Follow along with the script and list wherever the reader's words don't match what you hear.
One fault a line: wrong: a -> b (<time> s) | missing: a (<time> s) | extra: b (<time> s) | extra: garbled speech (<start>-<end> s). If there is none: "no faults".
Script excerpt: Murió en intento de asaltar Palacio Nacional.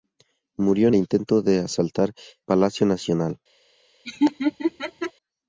no faults